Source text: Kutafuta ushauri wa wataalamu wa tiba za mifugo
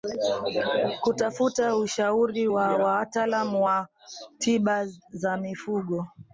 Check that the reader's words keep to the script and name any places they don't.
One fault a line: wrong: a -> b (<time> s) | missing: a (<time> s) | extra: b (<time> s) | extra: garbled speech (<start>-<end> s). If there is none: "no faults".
no faults